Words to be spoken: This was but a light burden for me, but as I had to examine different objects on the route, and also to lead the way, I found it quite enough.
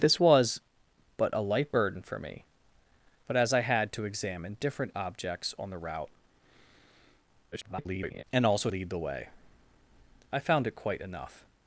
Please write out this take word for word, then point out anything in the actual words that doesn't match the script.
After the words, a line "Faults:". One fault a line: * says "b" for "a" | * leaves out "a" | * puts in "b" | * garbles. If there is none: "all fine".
This was but a light burden for me, but as I had to examine different objects on the route, [garbled] and also lead the way, I found it quite enough.
Faults:
* garbles
* leaves out "to"